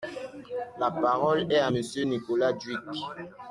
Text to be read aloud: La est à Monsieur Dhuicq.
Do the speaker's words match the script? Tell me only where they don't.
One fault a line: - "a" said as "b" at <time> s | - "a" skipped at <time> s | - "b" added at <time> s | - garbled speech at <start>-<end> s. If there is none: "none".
- "parole" added at 0.9 s
- "Nicolas" added at 2.0 s